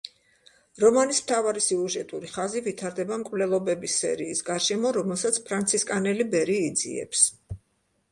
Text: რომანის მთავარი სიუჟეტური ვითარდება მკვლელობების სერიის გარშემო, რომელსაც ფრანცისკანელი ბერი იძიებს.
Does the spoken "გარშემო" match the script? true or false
true